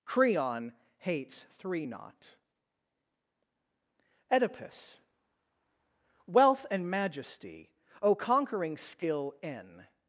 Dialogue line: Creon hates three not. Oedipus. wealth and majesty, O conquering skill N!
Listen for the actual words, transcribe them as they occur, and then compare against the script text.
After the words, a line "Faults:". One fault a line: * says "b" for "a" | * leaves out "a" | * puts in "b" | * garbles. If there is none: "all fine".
Creon hates three not. Oedipus. wealth and majesty, O conquering skill N!
Faults:
all fine